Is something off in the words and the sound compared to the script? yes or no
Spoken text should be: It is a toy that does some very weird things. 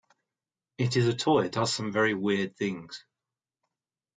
yes